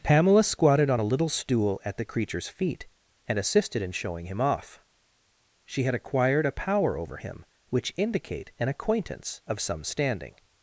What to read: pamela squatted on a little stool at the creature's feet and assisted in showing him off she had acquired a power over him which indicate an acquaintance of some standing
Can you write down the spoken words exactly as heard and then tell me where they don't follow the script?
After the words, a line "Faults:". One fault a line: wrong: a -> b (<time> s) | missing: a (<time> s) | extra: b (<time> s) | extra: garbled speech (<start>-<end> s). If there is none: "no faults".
pamela squatted on a little stool at the creature's feet and assisted in showing him off she had acquired a power over him which indicate an acquaintance of some standing
Faults:
no faults